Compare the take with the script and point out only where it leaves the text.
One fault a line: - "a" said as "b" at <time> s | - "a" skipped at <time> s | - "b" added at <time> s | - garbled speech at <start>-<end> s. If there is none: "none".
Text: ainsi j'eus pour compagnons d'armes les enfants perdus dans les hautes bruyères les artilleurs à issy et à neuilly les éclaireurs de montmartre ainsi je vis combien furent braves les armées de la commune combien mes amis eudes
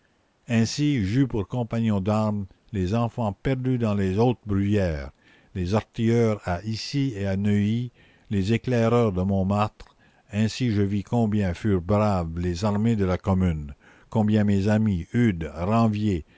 none